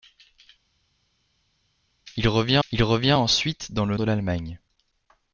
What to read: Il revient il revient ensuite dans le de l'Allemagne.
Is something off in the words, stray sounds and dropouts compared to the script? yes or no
no